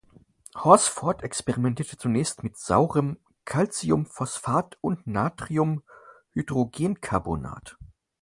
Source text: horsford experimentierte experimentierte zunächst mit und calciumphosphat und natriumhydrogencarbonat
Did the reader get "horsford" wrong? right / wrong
right